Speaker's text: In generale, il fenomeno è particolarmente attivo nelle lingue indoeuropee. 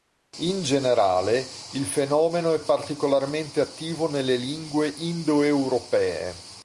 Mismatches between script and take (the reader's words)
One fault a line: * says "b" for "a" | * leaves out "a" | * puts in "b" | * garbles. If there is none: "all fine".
all fine